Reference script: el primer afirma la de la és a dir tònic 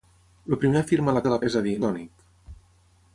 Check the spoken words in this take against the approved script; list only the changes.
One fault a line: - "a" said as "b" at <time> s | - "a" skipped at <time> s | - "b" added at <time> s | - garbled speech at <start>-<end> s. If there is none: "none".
none